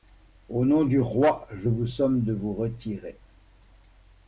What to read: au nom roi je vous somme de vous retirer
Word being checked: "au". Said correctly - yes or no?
yes